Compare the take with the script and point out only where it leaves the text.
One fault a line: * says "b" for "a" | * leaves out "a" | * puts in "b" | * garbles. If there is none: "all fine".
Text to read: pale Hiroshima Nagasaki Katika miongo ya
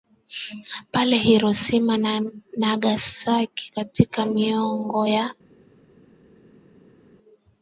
* puts in "na"